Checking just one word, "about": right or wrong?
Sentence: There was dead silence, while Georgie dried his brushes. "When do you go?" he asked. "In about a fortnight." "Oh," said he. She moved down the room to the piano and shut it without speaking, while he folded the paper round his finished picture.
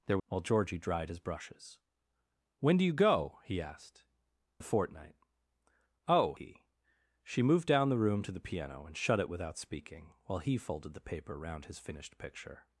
wrong